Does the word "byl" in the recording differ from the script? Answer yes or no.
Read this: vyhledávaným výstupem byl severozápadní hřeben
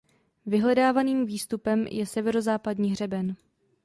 yes